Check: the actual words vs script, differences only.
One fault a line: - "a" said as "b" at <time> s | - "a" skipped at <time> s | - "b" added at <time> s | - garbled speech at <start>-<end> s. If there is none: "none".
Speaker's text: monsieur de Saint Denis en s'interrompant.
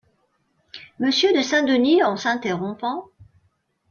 none